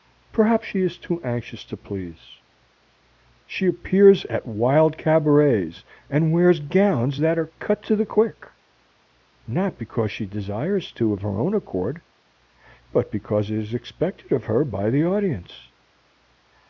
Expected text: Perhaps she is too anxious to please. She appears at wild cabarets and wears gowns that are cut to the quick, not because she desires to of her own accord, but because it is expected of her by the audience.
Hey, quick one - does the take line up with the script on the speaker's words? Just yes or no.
yes